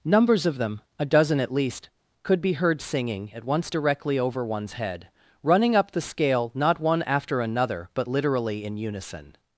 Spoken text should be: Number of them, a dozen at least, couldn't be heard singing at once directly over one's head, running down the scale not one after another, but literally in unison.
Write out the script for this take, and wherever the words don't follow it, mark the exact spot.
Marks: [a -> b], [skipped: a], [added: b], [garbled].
[Number -> Numbers] of them, a dozen at least, [couldn't -> could] be heard singing at once directly over one's head, running [down -> up] the scale not one after another, but literally in unison.